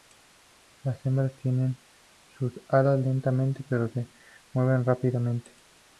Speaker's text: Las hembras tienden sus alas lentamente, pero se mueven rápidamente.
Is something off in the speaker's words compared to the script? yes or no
no